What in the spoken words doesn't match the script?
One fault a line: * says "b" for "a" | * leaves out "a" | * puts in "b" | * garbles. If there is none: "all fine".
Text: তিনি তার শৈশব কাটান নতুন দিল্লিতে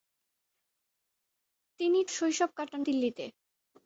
* leaves out "তার"
* leaves out "নতুন"